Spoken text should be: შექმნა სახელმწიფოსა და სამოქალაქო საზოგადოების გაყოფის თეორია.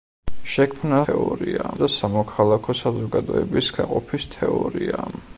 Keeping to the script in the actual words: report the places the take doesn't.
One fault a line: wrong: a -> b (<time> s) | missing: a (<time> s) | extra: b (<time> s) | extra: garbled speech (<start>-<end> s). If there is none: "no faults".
wrong: სახელმწიფოსა -> თეორია (1.0 s)